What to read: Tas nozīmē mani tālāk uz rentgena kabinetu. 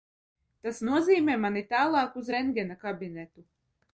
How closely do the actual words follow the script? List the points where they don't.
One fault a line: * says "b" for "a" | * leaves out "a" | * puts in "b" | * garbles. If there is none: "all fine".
all fine